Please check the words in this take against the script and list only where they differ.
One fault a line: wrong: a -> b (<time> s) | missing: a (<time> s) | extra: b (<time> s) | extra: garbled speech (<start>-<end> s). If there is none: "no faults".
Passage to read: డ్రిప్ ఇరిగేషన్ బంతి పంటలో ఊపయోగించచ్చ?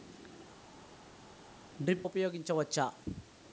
missing: ఇరిగేషన్ బంతి పంటలో (2.1 s)